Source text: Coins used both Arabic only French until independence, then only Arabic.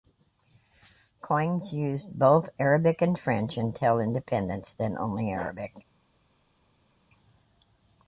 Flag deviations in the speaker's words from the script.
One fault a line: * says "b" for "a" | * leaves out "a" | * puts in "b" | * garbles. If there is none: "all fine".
* says "and" for "only"